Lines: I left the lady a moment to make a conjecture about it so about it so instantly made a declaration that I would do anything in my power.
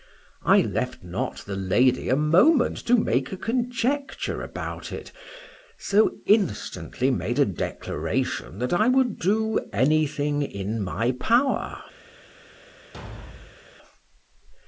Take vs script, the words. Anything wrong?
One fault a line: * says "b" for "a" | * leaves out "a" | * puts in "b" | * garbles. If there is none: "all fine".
* puts in "not"
* leaves out "about it so"